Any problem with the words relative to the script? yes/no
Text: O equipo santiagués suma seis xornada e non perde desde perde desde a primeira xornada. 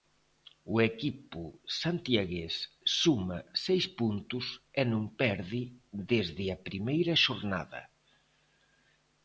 yes